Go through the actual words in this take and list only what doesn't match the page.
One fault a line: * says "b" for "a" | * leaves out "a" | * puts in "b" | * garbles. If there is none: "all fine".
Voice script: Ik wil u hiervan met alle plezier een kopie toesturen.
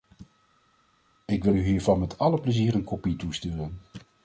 all fine